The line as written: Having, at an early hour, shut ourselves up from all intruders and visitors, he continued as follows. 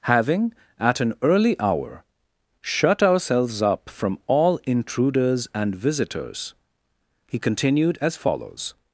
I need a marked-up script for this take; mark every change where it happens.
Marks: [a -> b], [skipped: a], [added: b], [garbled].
Having, at an early hour, shut ourselves up from all intruders and visitors, he continued as follows.